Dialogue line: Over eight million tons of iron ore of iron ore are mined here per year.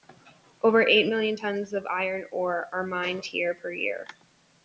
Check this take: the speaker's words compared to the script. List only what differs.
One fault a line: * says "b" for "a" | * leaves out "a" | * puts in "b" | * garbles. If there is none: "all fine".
* leaves out "of iron ore"